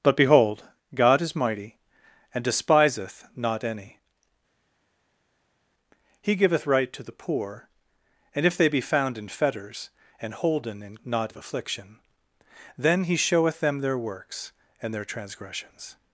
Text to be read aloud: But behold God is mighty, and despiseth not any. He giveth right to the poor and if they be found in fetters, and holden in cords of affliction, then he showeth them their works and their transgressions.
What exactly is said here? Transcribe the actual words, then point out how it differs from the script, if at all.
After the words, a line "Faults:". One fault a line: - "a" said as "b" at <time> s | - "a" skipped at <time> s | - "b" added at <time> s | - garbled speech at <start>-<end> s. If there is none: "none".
But behold God is mighty, and despiseth not any. He giveth right to the poor and if they be found in fetters, and holden in not of affliction, then he showeth them their works and their transgressions.
Faults:
- "cords" said as "not" at 11.0 s